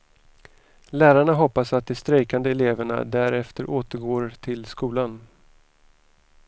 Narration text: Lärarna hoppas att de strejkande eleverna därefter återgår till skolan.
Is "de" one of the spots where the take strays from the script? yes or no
no